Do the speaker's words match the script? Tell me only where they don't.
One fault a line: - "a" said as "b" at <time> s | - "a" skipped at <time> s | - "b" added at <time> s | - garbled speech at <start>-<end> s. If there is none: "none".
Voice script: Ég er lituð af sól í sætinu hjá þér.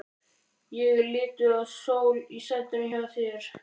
none